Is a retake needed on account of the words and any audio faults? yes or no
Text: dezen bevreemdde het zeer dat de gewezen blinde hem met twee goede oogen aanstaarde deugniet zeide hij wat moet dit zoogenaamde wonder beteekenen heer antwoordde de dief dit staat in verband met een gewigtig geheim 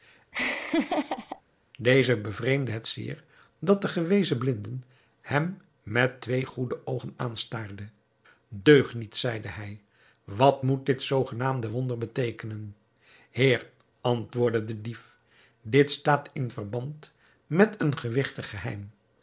yes